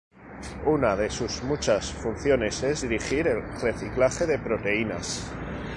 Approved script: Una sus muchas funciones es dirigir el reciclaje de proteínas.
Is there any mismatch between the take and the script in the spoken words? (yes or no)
yes